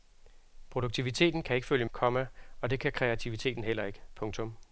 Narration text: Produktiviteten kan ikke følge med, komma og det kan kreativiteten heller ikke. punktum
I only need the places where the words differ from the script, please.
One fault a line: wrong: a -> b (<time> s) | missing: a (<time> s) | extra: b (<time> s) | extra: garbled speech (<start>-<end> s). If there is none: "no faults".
missing: med (1.9 s)